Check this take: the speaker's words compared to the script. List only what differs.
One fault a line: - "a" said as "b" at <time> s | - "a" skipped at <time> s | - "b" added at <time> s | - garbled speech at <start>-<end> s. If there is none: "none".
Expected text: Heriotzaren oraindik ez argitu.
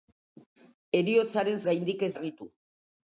none